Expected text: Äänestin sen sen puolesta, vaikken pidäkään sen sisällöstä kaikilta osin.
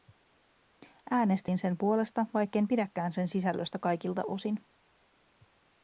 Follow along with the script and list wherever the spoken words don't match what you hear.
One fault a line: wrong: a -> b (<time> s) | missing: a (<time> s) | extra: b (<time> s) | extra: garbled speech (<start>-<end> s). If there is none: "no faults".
missing: sen (1.8 s)